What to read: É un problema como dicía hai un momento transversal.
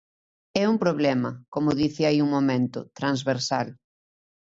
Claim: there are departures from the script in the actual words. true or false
false